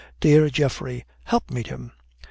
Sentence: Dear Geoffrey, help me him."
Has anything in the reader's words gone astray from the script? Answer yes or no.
no